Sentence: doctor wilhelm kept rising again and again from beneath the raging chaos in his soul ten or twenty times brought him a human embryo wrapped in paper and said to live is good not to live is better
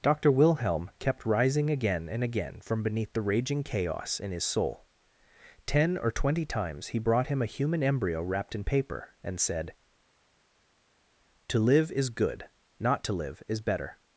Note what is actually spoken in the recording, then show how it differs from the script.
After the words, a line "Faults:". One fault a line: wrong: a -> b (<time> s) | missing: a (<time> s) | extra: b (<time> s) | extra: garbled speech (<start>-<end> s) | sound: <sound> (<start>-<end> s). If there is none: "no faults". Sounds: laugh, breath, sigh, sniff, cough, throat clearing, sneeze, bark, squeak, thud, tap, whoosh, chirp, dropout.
doctor wilhelm kept rising again and again from beneath the raging chaos in his soul ten or twenty times he brought him a human embryo wrapped in paper and said to live is good not to live is better
Faults:
extra: he (6.9 s)